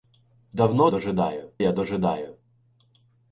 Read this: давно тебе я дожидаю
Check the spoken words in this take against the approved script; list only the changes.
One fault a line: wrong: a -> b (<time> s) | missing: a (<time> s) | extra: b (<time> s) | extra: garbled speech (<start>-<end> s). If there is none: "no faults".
wrong: тебе -> дожидаю (0.9 s)